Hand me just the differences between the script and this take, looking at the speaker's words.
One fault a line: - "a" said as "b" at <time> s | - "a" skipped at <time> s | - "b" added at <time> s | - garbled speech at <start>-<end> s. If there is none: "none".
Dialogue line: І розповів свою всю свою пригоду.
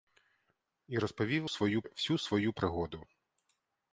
none